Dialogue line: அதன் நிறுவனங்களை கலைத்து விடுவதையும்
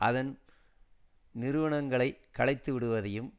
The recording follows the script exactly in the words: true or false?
true